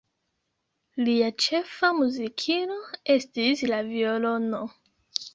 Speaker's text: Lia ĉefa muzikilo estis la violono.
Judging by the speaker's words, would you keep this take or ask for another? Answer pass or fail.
pass